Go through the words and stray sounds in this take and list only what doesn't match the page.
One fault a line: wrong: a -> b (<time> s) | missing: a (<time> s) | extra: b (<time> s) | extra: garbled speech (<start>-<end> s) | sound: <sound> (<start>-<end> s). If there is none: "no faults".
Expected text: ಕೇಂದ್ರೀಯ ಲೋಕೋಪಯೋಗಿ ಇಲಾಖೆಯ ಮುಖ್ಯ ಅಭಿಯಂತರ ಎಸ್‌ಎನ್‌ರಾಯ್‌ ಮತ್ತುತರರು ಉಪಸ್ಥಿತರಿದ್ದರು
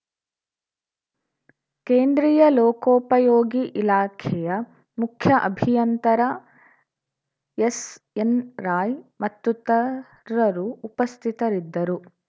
no faults